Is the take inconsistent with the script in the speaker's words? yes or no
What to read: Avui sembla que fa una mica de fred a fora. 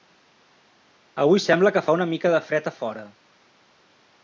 no